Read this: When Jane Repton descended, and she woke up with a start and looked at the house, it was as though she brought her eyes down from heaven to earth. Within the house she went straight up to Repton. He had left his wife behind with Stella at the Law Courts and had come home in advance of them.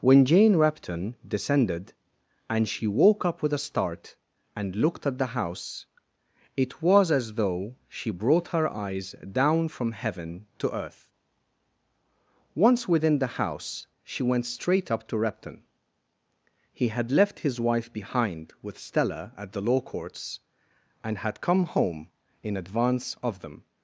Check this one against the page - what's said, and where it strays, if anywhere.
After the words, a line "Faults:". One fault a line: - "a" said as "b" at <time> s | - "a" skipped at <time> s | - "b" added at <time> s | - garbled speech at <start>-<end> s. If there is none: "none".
When Jane Repton descended, and she woke up with a start and looked at the house, it was as though she brought her eyes down from heaven to earth. Once within the house she went straight up to Repton. He had left his wife behind with Stella at the Law Courts and had come home in advance of them.
Faults:
- "Once" added at 12.6 s